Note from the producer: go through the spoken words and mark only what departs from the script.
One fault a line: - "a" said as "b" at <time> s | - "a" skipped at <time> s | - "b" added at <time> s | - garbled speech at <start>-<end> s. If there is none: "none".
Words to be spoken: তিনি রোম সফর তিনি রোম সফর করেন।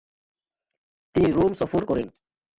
- "তিনি রোম সফর" skipped at 1.8 s